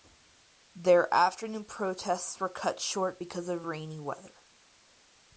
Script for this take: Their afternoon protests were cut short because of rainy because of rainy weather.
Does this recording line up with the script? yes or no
no